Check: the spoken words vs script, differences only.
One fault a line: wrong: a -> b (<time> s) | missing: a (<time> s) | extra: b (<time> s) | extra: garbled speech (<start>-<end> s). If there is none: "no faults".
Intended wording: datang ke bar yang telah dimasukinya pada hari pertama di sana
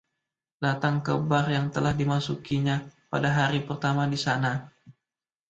no faults